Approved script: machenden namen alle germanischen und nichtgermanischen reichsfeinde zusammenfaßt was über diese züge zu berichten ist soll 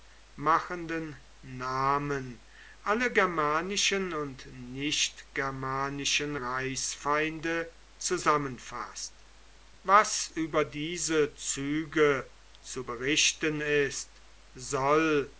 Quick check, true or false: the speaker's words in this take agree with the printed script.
true